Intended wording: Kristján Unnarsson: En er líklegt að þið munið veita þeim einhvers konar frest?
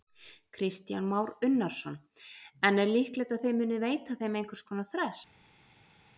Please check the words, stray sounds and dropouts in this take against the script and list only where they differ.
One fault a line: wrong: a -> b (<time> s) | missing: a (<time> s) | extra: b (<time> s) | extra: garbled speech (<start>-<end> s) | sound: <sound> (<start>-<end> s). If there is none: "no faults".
extra: Már (1.0 s)